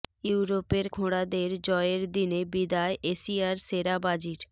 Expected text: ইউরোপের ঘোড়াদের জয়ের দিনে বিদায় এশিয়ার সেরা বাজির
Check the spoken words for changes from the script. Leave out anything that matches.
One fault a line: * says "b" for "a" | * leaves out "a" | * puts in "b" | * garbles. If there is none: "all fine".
all fine